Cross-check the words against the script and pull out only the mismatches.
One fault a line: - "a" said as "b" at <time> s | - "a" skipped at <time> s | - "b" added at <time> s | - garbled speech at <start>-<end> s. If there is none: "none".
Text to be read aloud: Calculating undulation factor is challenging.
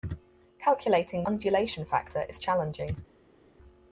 none